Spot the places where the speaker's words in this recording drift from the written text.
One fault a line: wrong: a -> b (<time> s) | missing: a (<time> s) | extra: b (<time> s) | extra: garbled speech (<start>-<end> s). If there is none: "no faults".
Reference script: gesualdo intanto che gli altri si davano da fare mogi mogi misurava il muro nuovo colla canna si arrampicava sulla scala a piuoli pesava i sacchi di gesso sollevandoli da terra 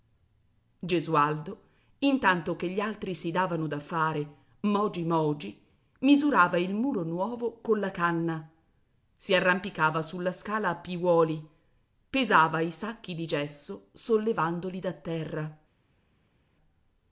no faults